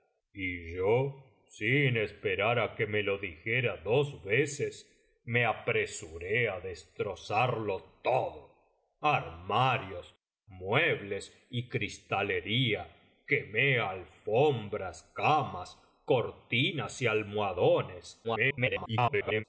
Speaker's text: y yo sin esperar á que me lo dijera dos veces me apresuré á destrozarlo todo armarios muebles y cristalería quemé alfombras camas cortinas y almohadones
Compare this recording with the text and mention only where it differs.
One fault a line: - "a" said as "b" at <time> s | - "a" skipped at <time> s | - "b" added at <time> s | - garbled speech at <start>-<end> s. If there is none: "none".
- garbled speech at 18.2-19.4 s